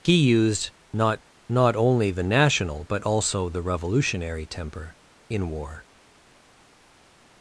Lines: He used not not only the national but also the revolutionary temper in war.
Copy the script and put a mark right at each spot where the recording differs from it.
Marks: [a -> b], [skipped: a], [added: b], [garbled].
He used not not only the national but also the revolutionary temper in war.